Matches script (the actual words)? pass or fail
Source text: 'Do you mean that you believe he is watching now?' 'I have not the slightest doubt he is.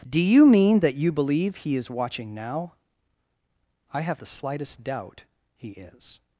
fail